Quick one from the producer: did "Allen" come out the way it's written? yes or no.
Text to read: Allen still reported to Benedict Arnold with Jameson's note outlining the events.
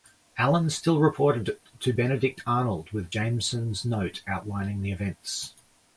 yes